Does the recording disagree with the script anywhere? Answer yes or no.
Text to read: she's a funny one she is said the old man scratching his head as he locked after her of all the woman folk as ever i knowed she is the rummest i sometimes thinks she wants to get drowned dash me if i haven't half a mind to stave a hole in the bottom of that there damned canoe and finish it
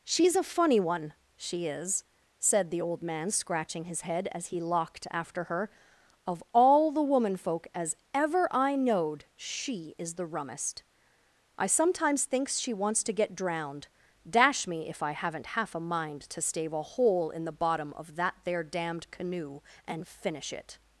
no